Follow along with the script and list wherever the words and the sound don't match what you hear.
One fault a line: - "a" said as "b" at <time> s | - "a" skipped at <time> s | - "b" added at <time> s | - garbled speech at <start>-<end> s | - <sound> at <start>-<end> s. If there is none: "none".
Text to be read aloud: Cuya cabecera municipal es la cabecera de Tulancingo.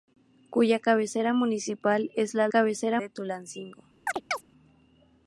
- chirp at 4.1-4.4 s